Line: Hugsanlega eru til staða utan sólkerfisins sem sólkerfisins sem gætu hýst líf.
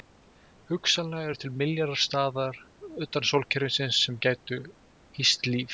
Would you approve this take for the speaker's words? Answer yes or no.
no